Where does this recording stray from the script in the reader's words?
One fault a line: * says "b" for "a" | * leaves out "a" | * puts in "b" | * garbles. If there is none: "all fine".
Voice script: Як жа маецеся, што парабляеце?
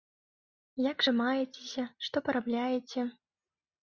all fine